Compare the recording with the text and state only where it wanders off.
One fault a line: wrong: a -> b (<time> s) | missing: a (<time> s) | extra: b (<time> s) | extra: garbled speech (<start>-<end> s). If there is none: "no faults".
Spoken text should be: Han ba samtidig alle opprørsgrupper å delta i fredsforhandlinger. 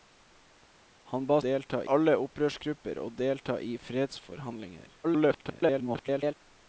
wrong: samtidig -> delta (1.5 s)
extra: garbled speech (5.0-6.3 s)